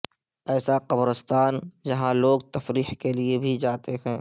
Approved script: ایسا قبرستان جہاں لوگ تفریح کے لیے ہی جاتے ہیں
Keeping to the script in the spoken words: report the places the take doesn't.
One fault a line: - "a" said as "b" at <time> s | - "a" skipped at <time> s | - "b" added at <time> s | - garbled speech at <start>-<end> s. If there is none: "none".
- "ہی" said as "بھی" at 3.4 s